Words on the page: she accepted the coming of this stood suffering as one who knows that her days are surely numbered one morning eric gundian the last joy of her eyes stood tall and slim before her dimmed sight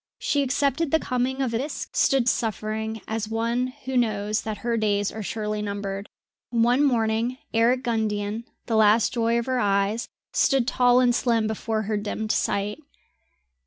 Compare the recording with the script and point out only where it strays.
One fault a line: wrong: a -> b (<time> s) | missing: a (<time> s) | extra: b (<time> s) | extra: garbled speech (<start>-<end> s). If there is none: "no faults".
no faults